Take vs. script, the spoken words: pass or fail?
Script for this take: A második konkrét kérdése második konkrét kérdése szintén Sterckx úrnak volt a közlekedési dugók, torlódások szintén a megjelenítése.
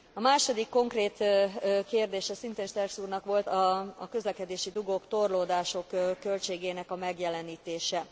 fail